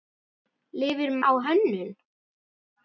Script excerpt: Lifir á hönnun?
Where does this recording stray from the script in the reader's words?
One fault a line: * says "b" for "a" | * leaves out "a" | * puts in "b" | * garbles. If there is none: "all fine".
all fine